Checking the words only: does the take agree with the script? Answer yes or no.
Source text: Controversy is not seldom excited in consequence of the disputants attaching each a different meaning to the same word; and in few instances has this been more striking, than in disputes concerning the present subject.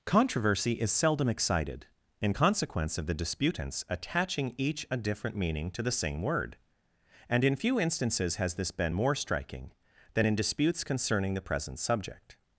no